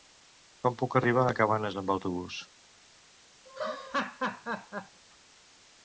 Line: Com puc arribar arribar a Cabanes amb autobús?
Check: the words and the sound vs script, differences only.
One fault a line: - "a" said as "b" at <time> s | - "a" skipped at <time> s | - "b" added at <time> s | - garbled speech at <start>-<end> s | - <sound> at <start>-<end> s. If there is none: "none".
- "arribar" skipped at 1.2 s
- laugh at 3.5-5.0 s